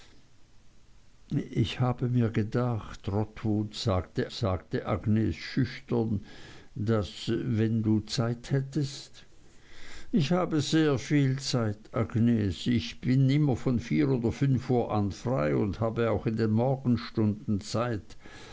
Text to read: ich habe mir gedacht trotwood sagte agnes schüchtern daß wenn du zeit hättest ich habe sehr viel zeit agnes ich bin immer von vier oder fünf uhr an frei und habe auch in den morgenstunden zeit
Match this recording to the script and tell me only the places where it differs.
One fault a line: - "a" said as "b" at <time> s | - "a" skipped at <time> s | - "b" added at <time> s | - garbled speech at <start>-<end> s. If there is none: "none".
- "sagte" added at 4.3 s